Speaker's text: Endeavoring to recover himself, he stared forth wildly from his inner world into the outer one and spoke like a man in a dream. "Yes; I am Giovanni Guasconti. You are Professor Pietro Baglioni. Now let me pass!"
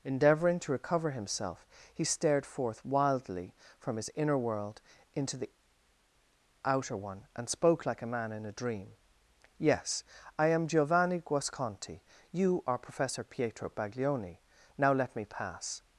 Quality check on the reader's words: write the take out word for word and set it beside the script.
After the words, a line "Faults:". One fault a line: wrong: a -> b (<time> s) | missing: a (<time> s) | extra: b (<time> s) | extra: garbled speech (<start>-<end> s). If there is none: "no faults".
Endeavoring to recover himself, he stared forth wildly from his inner world into the outer one and spoke like a man in a dream. "Yes; I am Giovanni Guasconti. You are Professor Pietro Baglioni. Now let me pass!"
Faults:
no faults